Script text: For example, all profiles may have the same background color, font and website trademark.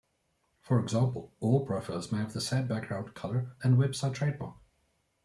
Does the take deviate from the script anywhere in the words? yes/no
yes